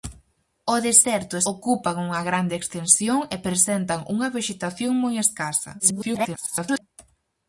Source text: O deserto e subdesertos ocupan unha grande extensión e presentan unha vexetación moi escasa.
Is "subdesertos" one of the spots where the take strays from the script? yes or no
yes